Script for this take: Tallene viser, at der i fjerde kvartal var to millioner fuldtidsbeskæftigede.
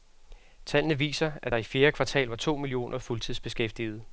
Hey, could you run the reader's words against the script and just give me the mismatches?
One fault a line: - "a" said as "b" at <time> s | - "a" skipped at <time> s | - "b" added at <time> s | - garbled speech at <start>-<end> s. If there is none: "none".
none